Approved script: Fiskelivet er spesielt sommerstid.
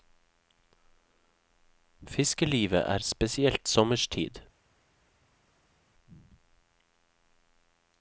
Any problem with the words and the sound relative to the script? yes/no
no